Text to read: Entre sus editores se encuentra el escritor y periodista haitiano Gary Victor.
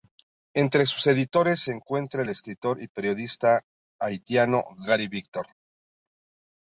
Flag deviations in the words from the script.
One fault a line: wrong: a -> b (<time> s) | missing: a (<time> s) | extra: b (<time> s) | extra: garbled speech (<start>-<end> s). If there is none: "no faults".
no faults